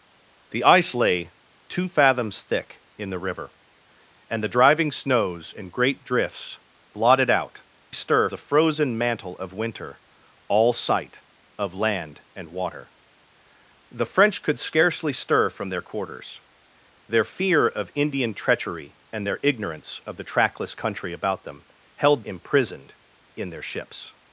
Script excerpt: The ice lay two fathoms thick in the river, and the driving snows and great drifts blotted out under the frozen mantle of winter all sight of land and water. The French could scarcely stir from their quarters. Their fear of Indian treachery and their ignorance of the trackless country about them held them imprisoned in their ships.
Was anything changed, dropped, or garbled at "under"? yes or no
yes